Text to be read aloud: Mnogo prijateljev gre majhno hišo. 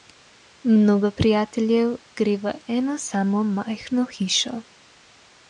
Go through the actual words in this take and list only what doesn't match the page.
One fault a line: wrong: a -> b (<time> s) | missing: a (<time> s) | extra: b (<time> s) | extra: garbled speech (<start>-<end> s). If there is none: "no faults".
extra: v eno samo (2.4 s)